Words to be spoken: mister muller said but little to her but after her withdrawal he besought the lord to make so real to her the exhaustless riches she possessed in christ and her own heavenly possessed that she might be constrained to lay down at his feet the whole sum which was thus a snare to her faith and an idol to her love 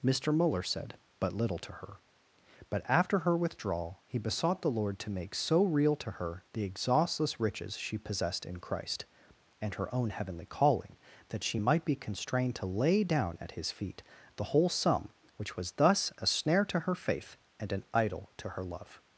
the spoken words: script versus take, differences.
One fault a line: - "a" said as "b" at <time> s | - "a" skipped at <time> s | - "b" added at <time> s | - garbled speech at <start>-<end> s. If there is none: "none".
- "possessed" said as "calling" at 10.4 s